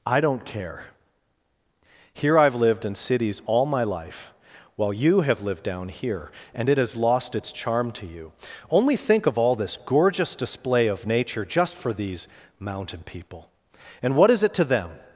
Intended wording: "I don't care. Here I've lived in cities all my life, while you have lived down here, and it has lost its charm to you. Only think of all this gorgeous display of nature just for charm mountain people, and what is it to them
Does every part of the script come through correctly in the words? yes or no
no